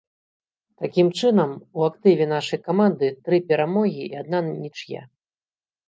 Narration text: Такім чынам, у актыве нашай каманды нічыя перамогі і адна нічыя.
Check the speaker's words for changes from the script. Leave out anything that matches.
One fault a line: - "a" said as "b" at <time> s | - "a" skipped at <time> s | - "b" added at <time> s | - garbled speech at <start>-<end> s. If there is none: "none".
- "нічыя" said as "тры" at 3.3 s